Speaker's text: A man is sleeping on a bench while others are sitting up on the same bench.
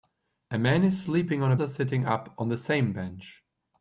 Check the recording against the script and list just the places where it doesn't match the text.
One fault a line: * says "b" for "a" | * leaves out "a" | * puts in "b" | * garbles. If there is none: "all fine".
* leaves out "bench while others"